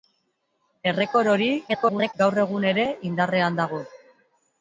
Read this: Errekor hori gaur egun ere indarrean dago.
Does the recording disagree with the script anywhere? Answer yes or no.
yes